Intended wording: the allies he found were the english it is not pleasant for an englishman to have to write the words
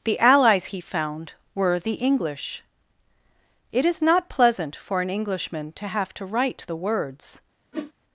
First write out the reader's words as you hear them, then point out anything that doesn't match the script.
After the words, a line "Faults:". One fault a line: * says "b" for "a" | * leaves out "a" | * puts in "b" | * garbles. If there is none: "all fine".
the allies he found were the english it is not pleasant for an englishman to have to write the words
Faults:
all fine